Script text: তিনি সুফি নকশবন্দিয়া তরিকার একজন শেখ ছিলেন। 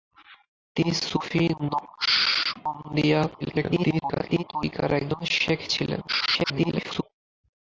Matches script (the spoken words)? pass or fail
fail